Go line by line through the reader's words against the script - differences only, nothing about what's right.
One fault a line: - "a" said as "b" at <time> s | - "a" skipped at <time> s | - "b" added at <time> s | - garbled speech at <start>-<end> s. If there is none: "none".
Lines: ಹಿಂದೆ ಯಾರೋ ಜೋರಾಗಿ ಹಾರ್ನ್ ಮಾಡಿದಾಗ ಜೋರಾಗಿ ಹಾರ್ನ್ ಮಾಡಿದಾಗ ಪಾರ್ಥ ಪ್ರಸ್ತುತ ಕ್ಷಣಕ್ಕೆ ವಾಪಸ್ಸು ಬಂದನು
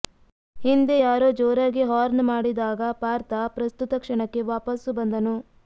- "ಜೋರಾಗಿ ಹಾರ್ನ್ ಮಾಡಿದಾಗ" skipped at 2.8 s